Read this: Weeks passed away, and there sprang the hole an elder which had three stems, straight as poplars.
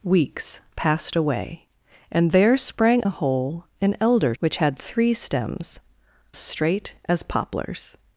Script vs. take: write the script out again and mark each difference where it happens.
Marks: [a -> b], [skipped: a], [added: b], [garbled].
Weeks passed away, and there sprang the hole an elder which had three stems, straight as poplars.